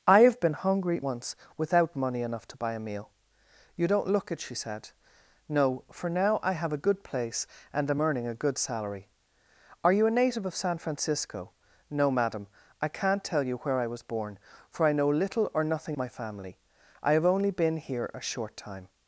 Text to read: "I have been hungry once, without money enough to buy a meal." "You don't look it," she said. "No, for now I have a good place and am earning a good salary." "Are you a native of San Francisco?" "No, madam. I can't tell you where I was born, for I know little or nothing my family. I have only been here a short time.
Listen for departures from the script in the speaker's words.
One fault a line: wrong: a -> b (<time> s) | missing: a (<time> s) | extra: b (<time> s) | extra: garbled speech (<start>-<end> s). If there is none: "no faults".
no faults